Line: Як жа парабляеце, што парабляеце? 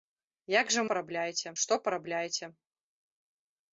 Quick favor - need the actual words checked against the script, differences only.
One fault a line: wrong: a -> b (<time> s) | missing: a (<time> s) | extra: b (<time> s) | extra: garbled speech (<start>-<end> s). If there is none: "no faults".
no faults